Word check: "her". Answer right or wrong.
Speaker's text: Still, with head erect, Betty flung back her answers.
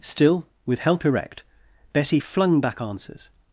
wrong